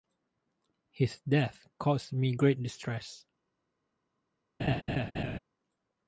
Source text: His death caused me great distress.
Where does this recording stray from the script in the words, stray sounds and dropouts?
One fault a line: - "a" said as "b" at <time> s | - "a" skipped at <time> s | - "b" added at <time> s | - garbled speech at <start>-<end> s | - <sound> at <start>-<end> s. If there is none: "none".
- laugh at 4.6-5.4 s